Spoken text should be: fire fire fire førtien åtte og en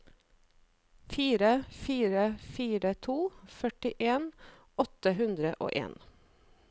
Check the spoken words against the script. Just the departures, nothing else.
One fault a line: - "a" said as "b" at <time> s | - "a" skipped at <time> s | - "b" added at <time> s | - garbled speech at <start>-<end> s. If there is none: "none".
- "to" added at 3.1 s
- "hundre" added at 5.2 s